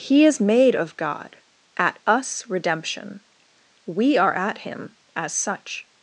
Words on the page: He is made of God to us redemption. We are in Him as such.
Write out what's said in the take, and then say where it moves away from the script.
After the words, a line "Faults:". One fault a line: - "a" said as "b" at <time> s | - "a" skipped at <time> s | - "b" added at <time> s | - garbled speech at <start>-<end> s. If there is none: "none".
He is made of God at us redemption. We are at Him as such.
Faults:
- "to" said as "at" at 1.8 s
- "in" said as "at" at 4.3 s